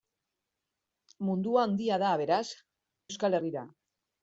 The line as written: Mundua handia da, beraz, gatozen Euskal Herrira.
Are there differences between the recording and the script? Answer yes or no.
yes